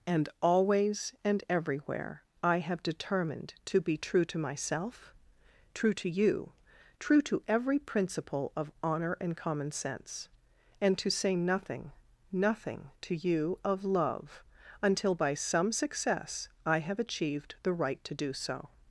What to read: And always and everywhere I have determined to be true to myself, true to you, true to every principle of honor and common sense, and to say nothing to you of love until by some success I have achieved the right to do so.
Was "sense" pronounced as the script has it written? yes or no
yes